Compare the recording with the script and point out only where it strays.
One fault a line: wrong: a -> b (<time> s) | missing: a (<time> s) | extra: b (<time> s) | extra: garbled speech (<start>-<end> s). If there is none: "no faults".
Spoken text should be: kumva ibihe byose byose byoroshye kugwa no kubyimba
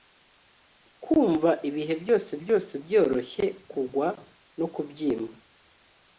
no faults